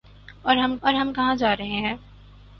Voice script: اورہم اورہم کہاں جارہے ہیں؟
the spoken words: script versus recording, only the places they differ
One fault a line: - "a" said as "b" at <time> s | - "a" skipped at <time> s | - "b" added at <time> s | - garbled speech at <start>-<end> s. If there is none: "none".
none